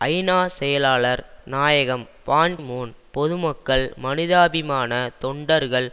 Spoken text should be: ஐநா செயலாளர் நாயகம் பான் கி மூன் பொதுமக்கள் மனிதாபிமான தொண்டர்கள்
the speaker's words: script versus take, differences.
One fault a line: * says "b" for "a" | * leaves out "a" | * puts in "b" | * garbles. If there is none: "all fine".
* leaves out "கி"